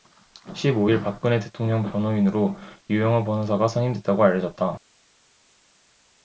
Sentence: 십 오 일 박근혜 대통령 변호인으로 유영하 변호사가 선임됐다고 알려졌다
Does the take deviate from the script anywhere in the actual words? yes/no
no